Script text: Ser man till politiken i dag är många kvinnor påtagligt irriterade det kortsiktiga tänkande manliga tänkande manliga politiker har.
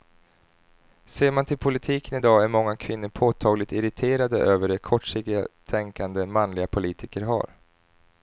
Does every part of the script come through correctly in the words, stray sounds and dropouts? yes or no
no